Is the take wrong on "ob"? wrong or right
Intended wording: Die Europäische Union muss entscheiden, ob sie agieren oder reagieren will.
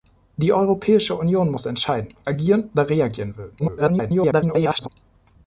wrong